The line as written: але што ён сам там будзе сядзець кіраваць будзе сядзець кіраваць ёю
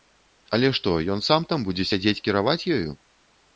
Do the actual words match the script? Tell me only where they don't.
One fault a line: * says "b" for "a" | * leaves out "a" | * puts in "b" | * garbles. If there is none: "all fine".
* leaves out "будзе сядзець кіраваць"